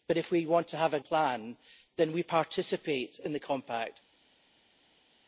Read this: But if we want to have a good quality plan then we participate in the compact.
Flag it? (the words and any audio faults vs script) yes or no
yes